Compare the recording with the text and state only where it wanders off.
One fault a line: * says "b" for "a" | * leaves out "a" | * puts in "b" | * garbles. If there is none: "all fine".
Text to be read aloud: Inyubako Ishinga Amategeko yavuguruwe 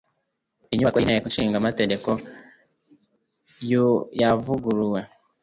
* puts in "y'Inteko"